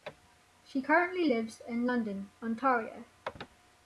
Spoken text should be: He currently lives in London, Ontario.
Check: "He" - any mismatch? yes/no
yes